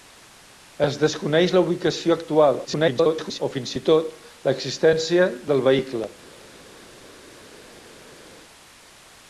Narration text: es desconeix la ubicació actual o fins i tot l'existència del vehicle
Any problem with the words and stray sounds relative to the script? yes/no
yes